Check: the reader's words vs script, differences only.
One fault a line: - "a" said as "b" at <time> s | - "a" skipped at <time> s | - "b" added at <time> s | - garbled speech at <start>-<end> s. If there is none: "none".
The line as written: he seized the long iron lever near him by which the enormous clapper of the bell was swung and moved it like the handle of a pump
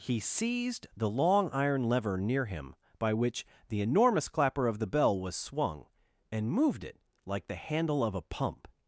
none